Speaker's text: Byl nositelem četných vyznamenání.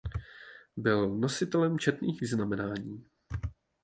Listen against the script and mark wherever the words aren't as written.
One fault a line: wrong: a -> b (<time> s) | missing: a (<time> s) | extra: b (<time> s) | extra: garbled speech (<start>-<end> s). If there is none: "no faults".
no faults